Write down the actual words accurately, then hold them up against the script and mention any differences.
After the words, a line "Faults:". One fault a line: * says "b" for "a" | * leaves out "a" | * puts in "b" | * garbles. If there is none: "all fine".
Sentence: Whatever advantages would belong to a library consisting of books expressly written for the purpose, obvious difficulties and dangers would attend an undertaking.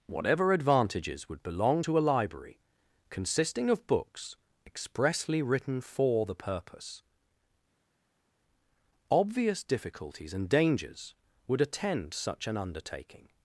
Whatever advantages would belong to a library consisting of books expressly written for the purpose, obvious difficulties and dangers would attend such an undertaking.
Faults:
* puts in "such"